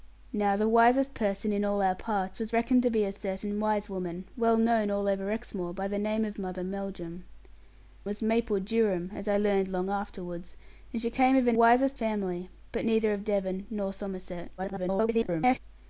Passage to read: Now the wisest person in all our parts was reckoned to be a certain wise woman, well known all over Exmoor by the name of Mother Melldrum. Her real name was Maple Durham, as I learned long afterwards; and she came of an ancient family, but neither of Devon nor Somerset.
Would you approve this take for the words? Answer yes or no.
no